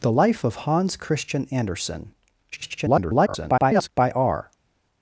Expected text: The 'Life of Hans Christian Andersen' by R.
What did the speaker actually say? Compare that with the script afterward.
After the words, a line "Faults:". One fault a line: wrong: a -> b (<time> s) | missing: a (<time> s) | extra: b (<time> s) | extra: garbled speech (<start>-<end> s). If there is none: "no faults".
The 'Life of Hans Christian Andersen' [garbled] by R.
Faults:
extra: garbled speech (2.5-3.9 s)